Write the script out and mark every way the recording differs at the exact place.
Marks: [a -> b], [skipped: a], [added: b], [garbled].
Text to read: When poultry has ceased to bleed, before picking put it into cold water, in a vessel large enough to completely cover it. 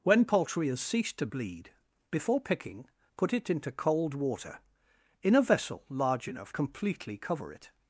When poultry has ceased to bleed, before picking put it into cold water, in a vessel large enough [skipped: to] completely cover it.